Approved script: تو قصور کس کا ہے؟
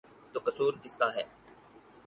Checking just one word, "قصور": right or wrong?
right